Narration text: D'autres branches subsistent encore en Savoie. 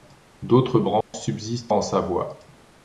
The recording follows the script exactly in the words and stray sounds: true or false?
false